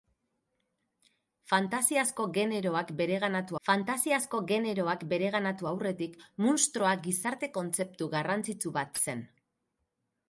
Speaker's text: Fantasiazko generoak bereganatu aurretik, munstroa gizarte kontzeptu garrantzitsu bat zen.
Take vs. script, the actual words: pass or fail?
fail